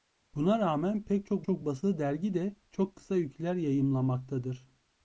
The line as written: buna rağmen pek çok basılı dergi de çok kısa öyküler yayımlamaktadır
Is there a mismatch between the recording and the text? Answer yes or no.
yes